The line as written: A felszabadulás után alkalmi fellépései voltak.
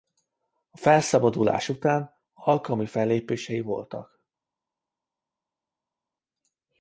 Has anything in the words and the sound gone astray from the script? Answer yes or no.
no